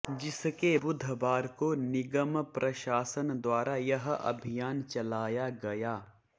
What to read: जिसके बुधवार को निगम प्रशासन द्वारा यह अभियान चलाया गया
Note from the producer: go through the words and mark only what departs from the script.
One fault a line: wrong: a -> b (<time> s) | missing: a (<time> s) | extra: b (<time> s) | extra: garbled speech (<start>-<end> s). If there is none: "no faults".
no faults